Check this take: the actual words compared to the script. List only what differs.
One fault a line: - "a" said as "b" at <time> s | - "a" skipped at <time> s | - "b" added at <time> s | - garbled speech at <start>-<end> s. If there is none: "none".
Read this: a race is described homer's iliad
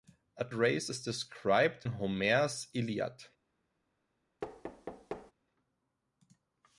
none